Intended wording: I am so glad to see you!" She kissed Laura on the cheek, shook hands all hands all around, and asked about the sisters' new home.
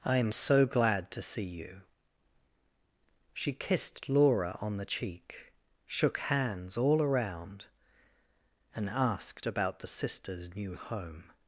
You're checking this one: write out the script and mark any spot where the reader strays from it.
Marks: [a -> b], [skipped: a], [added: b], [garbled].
I am so glad to see you!" She kissed Laura on the cheek, shook hands all [skipped: hands all] around, and asked about the sisters' new home.